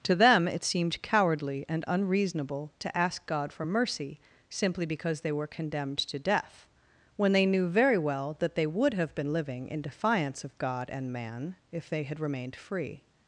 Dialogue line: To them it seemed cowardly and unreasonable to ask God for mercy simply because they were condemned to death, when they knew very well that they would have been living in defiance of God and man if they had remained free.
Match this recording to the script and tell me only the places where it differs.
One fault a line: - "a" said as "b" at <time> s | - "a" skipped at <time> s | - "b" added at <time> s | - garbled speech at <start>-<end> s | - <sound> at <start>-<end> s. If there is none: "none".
none